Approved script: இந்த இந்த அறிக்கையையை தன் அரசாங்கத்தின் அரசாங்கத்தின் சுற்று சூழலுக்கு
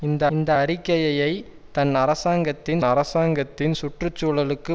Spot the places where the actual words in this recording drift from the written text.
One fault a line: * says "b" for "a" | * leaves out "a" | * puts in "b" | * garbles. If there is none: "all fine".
all fine